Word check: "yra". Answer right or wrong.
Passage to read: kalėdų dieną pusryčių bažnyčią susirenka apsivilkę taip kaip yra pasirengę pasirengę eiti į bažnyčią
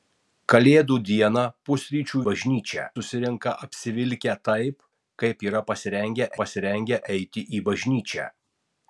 right